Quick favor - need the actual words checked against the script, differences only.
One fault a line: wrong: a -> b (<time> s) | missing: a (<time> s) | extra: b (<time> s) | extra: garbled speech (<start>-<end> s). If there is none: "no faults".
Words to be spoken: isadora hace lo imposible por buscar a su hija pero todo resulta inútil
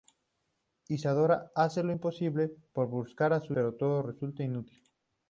missing: hija (3.6 s)